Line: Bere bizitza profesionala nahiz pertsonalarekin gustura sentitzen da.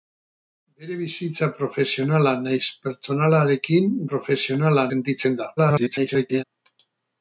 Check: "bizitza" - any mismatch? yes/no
no